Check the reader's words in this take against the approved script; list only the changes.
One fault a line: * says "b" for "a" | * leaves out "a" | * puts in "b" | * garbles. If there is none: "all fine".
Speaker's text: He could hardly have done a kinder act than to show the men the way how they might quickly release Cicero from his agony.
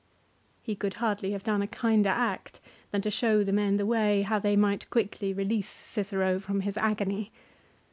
all fine